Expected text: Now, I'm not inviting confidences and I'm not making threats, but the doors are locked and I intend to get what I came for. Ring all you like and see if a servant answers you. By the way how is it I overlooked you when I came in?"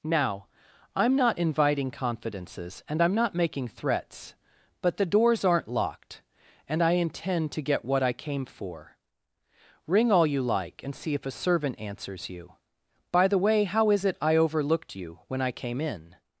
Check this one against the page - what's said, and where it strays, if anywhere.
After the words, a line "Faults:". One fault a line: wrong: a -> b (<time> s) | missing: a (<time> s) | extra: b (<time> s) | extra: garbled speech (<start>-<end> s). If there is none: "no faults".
Now, I'm not inviting confidences and I'm not making threats, but the doors aren't locked and I intend to get what I came for. Ring all you like and see if a servant answers you. By the way how is it I overlooked you when I came in?"
Faults:
wrong: are -> aren't (5.5 s)